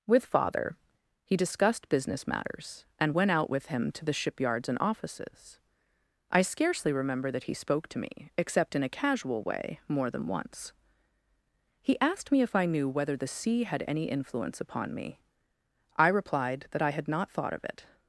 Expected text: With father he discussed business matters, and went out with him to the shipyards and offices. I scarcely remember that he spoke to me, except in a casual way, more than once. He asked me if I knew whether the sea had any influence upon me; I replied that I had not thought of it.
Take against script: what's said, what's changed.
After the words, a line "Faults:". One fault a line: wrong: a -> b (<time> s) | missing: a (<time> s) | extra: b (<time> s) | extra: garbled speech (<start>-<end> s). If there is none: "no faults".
With father he discussed business matters, and went out with him to the shipyards and offices. I scarcely remember that he spoke to me, except in a casual way, more than once. He asked me if I knew whether the sea had any influence upon me; I replied that I had not thought of it.
Faults:
no faults